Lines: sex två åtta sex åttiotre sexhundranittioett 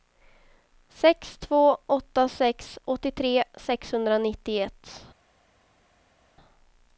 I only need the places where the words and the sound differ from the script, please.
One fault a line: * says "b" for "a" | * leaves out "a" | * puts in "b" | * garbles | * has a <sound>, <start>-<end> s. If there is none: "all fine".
all fine